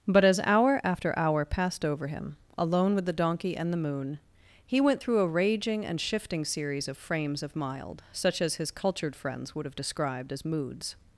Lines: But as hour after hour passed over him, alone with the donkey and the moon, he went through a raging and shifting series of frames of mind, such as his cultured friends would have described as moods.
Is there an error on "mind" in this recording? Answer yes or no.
yes